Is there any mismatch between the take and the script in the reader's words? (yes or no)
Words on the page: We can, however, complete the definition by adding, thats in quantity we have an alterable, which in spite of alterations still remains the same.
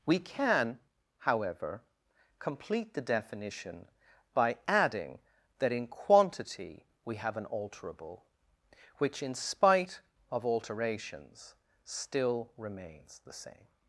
yes